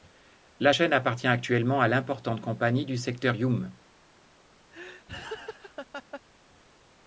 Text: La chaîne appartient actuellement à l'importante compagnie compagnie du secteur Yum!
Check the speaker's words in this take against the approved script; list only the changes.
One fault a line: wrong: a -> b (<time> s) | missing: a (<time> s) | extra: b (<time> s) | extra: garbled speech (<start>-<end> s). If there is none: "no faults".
missing: compagnie (2.8 s)